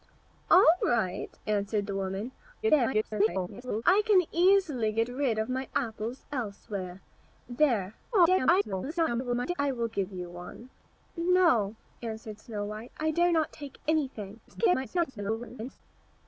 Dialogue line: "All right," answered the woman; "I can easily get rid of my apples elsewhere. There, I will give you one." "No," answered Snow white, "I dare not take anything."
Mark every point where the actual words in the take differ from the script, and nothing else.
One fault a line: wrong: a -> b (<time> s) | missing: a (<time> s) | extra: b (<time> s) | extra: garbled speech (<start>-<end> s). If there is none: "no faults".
extra: garbled speech (2.6-3.8 s)
extra: garbled speech (8.1-9.5 s)
extra: garbled speech (14.5-15.8 s)